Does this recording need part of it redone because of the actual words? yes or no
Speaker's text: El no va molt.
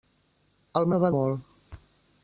no